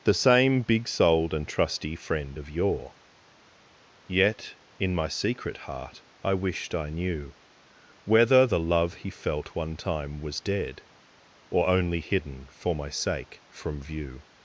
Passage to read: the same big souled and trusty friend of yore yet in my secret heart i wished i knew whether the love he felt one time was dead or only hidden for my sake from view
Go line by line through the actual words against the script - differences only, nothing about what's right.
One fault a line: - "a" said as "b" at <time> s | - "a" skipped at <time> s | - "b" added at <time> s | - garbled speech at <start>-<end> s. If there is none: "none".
none